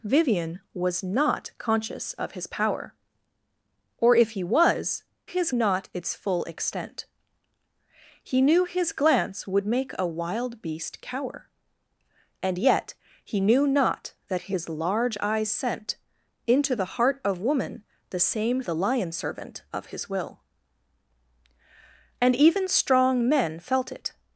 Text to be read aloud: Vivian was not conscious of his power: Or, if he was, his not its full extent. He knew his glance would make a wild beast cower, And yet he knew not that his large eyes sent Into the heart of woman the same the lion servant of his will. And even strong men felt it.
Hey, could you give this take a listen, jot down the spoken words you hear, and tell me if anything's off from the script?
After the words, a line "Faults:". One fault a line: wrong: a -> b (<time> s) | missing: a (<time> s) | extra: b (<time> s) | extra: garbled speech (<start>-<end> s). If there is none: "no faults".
Vivian was not conscious of his power: Or, if he was, his not its full extent. He knew his glance would make a wild beast cower, And yet he knew not that his large eyes sent Into the heart of woman the same the lion servant of his will. And even strong men felt it.
Faults:
no faults